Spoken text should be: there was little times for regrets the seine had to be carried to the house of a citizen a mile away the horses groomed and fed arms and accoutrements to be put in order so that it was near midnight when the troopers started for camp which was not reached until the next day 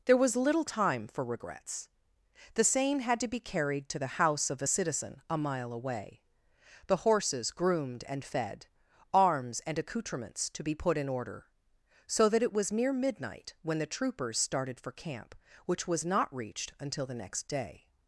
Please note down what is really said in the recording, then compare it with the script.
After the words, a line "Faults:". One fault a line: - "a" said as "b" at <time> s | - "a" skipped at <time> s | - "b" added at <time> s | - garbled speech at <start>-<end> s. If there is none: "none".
there was little time for regrets the seine had to be carried to the house of a citizen a mile away the horses groomed and fed arms and accoutrements to be put in order so that it was near midnight when the troopers started for camp which was not reached until the next day
Faults:
- "times" said as "time" at 0.6 s